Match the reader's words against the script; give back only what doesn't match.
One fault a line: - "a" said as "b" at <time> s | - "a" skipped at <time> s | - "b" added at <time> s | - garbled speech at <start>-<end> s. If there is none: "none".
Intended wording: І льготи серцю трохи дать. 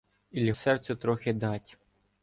- "льготи" skipped at 0.5 s